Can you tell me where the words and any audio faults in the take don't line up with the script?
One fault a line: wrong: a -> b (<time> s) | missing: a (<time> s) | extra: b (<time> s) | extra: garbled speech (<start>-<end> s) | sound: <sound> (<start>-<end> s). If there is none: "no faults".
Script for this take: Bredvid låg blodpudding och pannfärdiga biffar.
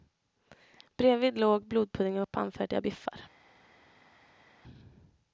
no faults